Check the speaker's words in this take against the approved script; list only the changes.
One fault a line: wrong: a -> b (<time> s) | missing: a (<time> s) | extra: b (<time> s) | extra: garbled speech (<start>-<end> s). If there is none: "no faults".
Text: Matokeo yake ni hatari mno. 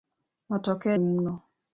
missing: yake ni hatari (0.9 s)